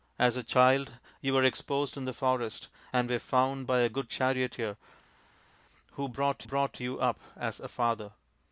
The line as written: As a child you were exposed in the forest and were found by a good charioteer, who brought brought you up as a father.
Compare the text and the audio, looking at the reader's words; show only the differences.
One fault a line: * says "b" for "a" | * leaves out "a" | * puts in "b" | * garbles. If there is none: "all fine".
all fine